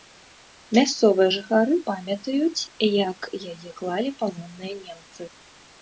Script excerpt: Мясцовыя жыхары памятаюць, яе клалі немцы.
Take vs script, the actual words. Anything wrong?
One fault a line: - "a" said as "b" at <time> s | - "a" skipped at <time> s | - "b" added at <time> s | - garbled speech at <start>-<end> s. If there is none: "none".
- "як" added at 3.1 s
- "палонныя" added at 4.3 s